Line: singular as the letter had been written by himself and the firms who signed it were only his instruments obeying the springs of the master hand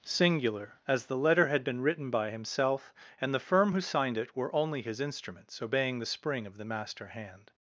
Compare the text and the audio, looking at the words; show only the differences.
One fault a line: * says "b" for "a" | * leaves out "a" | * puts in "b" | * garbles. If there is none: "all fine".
* says "firm" for "firms"
* says "spring" for "springs"